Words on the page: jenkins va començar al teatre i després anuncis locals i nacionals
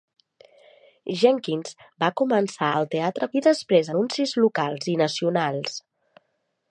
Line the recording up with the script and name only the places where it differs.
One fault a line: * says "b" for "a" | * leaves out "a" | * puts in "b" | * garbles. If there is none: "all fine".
all fine